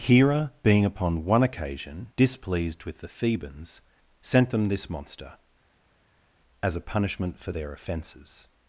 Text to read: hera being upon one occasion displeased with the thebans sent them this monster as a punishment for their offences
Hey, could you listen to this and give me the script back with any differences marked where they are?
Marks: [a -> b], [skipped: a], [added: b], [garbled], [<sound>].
hera being upon one occasion displeased with the thebans sent them this monster as a punishment for their offences